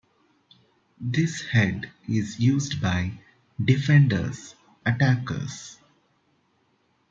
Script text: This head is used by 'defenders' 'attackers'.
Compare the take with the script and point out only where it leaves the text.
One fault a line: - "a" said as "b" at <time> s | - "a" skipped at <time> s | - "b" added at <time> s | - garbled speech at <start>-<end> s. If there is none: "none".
none